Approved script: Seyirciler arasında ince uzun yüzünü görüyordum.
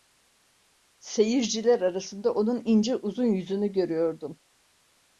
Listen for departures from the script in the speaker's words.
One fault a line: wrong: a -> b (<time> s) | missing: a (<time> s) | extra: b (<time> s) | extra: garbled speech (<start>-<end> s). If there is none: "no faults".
extra: onun (2.3 s)